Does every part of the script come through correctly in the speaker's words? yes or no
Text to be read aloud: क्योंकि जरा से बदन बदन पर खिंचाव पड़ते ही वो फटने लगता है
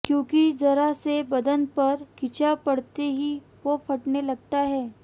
no